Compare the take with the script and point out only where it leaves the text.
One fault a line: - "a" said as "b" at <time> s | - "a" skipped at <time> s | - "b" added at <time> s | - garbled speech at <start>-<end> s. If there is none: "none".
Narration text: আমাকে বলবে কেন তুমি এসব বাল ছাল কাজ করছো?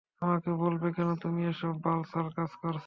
none